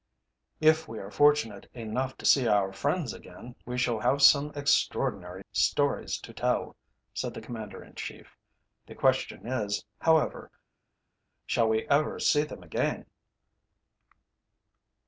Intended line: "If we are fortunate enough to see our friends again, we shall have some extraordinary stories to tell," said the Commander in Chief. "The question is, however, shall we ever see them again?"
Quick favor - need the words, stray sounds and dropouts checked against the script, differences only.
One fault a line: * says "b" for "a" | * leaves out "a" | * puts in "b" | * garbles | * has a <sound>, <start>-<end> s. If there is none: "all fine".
all fine